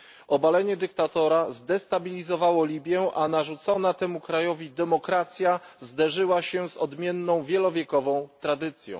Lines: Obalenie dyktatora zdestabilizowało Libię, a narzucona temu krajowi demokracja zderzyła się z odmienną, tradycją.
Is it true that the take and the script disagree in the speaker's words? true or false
true